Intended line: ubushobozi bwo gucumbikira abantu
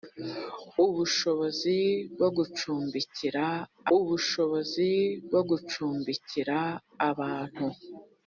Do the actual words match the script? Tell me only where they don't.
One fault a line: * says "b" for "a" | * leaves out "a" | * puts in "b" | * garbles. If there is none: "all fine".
* puts in "ubushobozi bwo gucumbikira"